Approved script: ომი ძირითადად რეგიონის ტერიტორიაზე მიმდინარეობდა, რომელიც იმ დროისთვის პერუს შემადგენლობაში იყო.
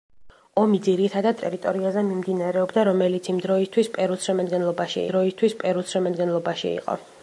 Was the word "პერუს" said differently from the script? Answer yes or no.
no